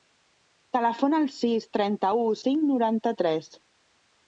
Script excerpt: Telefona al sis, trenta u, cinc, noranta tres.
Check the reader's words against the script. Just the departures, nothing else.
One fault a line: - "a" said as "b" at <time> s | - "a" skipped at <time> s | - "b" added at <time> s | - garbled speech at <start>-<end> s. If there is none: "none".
none